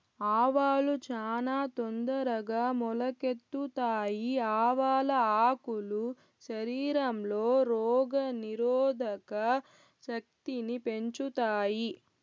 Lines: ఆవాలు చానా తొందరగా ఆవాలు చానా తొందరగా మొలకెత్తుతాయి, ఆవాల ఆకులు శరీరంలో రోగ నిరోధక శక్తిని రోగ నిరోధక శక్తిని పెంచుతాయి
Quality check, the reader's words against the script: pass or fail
fail